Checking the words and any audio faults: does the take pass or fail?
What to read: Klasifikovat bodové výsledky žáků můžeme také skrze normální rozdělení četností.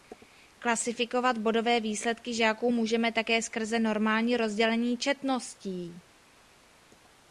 pass